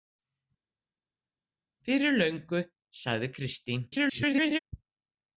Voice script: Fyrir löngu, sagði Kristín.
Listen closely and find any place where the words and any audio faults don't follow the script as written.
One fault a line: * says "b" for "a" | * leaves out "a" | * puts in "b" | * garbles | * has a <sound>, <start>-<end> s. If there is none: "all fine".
* garbles